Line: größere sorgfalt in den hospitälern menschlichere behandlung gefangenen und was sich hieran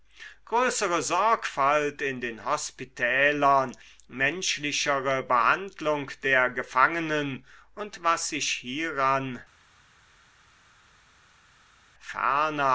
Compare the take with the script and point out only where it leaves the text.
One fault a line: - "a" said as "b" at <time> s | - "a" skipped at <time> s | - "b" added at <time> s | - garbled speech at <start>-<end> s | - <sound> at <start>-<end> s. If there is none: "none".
- "der" added at 6.2 s